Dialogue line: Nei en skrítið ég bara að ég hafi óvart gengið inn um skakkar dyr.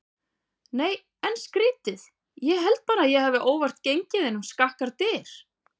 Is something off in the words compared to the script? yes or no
yes